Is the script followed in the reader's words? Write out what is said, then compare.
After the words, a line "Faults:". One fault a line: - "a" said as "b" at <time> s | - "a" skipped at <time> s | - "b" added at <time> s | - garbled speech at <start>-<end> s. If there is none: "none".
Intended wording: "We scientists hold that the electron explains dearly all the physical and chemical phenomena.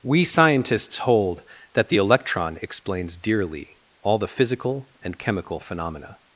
"We scientists hold that the electron explains dearly all the physical and chemical phenomena.
Faults:
none